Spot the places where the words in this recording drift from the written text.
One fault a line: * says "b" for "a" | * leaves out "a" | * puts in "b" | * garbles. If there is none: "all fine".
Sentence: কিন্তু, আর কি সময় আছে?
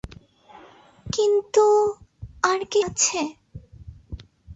* leaves out "সময়"